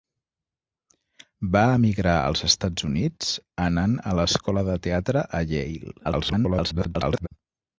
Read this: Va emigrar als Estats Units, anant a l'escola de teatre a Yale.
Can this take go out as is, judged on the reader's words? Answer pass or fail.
fail